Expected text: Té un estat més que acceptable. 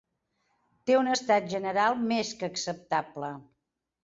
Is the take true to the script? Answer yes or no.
no